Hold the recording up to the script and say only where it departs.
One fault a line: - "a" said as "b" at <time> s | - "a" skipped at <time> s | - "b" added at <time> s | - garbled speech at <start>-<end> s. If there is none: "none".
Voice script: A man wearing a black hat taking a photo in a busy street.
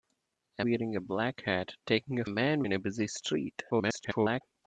- "man" skipped at 0.7 s
- "photo" said as "man" at 2.3 s
- garbled speech at 3.7-4.4 s